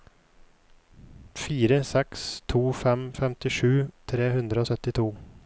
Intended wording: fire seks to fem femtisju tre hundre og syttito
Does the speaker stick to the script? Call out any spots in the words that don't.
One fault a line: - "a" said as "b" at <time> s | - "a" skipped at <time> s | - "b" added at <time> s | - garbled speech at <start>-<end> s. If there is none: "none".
none